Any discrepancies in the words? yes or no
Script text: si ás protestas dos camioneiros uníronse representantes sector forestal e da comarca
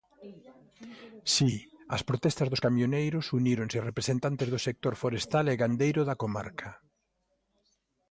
yes